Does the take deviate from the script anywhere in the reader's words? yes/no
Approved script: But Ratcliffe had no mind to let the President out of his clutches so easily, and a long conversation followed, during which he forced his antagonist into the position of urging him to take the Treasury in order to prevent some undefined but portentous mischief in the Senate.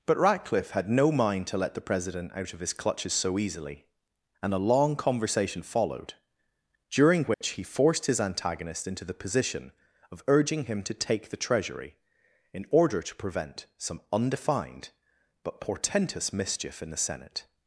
no